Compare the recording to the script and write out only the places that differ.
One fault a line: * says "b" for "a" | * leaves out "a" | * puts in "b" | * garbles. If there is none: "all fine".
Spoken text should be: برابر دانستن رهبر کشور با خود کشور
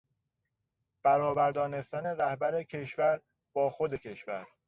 all fine